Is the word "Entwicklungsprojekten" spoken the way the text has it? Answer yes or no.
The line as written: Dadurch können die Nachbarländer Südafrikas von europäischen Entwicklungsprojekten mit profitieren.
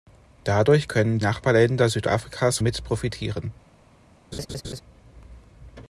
no